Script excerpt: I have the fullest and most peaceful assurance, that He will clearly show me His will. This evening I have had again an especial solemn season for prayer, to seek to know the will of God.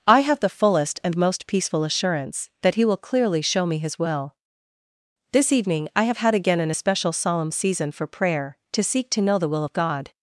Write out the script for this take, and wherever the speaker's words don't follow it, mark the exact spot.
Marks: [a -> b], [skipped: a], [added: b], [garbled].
I have the fullest and most peaceful assurance, that He will clearly show me His will. This evening I have had again an especial solemn season for prayer, to seek to know the will of God.